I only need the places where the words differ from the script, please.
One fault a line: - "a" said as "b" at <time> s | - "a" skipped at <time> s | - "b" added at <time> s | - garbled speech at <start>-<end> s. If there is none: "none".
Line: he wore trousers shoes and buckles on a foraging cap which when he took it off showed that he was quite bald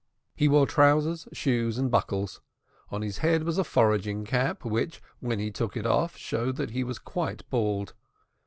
- "his head was" added at 3.0 s